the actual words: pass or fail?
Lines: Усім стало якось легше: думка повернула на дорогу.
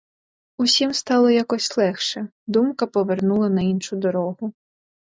fail